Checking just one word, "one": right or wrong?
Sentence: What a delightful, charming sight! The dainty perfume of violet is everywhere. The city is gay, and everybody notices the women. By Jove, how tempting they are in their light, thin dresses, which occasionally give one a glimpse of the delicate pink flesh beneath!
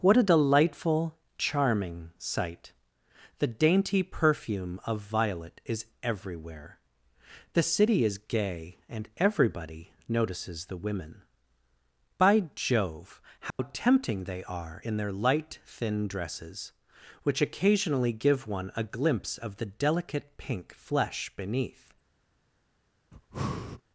right